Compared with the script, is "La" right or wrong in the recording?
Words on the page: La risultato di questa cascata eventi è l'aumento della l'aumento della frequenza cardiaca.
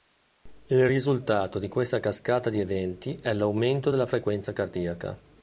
wrong